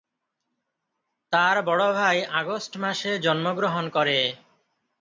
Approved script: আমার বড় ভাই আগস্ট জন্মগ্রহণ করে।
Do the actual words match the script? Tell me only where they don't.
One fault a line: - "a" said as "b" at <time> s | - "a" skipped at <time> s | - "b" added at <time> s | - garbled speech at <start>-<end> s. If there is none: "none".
- "আমার" said as "তার" at 1.3 s
- "মাসে" added at 2.8 s